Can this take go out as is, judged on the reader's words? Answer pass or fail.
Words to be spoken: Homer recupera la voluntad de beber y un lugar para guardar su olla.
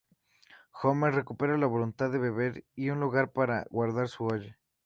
pass